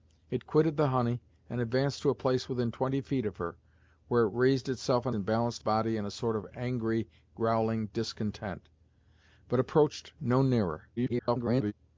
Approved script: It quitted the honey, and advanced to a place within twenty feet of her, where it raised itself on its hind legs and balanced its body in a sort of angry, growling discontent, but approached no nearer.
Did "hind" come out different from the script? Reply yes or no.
yes